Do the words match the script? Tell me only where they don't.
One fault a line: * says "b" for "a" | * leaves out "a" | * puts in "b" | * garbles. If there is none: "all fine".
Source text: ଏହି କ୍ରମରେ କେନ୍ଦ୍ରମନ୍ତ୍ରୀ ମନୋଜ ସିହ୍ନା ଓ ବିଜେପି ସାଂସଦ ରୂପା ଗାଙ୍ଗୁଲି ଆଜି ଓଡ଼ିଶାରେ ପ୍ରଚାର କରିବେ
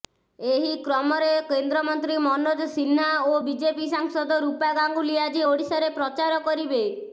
all fine